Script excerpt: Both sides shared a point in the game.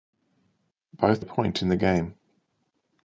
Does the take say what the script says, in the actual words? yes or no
no